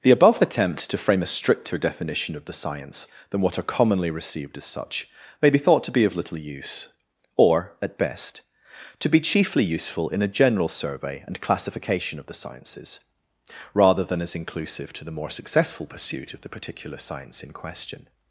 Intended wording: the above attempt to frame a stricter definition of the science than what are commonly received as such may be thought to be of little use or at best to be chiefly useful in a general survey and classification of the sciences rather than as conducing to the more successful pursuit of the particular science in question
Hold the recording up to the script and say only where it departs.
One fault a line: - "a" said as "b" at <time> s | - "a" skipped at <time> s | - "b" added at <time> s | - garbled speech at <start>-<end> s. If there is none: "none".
- "conducing" said as "inclusive" at 14.3 s